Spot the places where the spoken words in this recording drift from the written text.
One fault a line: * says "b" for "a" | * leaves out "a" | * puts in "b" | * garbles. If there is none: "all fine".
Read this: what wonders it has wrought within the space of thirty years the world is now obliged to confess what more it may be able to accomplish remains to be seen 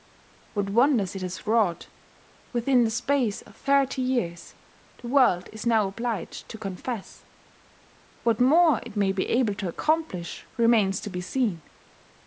all fine